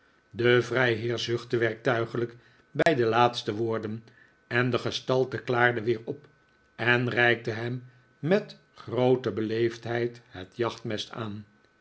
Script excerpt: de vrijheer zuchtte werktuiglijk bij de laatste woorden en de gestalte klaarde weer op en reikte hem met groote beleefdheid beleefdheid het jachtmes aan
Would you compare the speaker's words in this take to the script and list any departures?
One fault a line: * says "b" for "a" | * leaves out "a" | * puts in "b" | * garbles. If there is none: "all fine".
* leaves out "beleefdheid"